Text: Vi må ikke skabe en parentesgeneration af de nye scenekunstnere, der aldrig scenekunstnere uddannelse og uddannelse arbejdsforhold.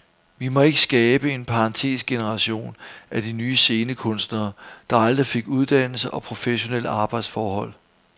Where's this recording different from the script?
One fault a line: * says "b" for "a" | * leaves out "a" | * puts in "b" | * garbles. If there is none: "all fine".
* says "fik" for "scenekunstnere"
* says "professionelle" for "uddannelse"